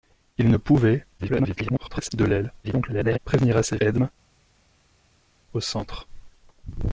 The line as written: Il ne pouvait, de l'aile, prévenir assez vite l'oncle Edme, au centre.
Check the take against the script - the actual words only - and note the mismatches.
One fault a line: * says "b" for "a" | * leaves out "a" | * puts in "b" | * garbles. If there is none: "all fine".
* garbles
* garbles
* leaves out "vite l'oncle"